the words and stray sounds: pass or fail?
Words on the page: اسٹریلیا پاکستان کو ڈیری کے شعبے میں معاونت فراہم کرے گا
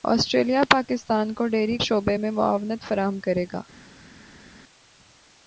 fail